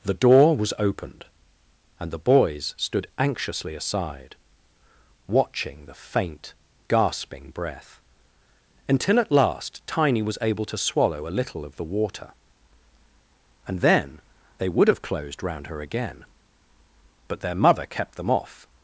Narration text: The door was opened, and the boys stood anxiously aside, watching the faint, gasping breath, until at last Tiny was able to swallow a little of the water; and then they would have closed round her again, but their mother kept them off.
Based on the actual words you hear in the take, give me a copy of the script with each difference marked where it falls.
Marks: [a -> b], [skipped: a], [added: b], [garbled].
The door was opened, and the boys stood anxiously aside, watching the faint, gasping breath, until at last Tiny was able to swallow a little of the water; and then they would have closed round her again, but their mother kept them off.